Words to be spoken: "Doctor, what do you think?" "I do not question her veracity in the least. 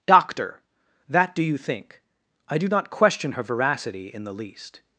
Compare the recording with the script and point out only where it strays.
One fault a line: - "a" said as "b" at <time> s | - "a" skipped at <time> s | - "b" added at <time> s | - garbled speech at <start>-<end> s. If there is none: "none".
- "what" said as "that" at 1.1 s